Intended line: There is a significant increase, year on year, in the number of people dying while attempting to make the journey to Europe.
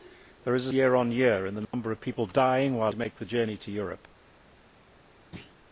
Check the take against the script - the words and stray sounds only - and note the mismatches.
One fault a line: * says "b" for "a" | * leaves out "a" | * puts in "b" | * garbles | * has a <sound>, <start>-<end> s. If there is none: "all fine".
* leaves out "significant increase"
* has a dropout, 1.6-1.7 s
* leaves out "attempting"
* has a thud, 5.3-5.6 s